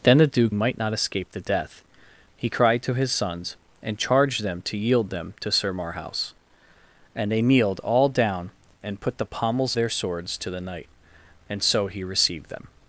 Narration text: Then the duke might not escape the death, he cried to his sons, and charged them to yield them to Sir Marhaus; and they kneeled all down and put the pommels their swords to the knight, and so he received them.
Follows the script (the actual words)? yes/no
yes